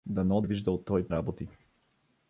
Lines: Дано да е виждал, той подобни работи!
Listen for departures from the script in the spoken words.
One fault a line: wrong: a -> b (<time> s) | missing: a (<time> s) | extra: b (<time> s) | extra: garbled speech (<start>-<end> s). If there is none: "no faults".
missing: да (0.4 s)
missing: подобни (1.1 s)